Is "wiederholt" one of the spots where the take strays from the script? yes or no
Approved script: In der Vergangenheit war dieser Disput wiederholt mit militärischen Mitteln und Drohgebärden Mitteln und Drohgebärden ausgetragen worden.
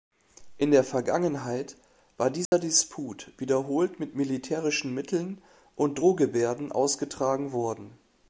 no